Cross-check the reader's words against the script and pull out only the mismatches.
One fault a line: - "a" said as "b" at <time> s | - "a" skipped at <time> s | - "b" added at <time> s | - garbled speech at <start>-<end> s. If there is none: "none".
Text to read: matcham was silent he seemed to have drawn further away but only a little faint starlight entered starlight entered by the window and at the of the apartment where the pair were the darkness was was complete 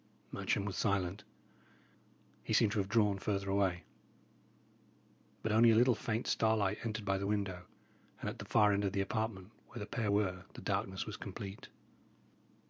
- "starlight entered" skipped at 7.0 s
- "far end" added at 8.5 s
- "was" skipped at 11.2 s